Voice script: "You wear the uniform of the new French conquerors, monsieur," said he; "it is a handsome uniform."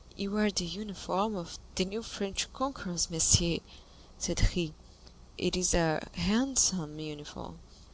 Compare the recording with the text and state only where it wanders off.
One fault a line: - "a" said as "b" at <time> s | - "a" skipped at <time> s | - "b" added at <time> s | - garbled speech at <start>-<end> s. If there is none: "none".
none